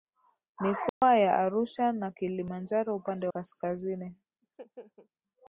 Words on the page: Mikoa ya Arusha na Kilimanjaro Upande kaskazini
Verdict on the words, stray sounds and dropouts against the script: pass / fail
fail